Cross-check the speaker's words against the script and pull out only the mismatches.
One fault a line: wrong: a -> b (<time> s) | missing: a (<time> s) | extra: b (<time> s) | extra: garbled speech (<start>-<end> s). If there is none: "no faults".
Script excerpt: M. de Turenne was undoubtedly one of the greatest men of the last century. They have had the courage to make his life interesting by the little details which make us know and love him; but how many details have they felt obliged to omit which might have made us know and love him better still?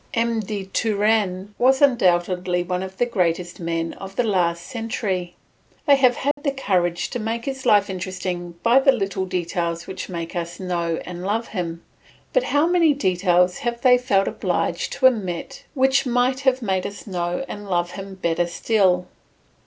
no faults